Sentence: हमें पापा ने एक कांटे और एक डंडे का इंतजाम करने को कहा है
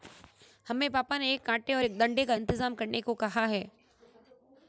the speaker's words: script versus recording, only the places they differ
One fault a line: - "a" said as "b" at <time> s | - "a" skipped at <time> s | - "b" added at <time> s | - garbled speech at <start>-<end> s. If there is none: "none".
none